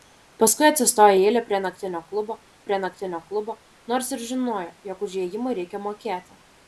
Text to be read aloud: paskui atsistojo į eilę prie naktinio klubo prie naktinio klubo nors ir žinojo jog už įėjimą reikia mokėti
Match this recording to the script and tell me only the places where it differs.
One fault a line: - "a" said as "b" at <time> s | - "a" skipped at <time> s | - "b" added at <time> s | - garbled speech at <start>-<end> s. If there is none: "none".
none